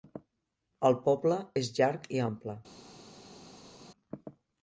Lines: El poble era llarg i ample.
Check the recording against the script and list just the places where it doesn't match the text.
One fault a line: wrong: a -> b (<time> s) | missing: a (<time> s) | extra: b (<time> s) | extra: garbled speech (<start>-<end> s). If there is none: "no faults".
wrong: era -> és (1.6 s)